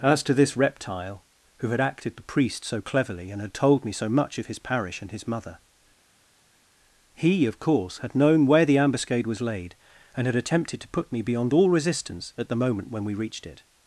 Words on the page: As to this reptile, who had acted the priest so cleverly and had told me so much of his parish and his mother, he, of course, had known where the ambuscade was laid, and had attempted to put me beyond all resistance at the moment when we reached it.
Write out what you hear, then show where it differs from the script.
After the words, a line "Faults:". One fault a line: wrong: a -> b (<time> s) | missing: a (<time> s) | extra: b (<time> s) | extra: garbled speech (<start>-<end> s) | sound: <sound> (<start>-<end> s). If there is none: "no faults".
As to this reptile, who had acted the priest so cleverly and had told me so much of his parish and his mother, he, of course, had known where the ambuscade was laid, and had attempted to put me beyond all resistance at the moment when we reached it.
Faults:
no faults